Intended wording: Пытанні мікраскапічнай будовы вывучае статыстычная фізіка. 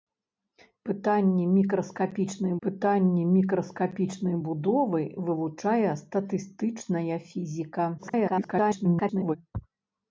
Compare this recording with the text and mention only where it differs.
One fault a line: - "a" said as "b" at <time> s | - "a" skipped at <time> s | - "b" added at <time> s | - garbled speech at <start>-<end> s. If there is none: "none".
- "пытанні мікраскапічнай" added at 2.7 s
- garbled speech at 8.0-9.4 s